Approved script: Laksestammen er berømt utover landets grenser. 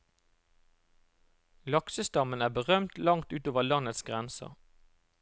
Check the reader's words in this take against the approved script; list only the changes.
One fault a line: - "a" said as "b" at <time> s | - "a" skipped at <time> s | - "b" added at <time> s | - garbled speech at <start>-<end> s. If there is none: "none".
- "langt" added at 3.0 s